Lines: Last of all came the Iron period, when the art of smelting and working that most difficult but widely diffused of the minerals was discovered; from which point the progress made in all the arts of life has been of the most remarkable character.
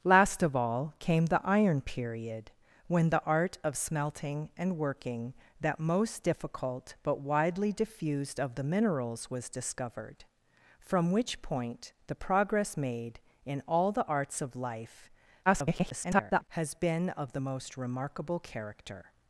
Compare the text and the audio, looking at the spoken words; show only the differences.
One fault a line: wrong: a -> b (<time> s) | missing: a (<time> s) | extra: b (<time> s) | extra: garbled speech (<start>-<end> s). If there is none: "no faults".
extra: garbled speech (15.5-16.5 s)